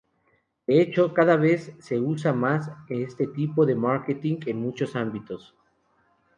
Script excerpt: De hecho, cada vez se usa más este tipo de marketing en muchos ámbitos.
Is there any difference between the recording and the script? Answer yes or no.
no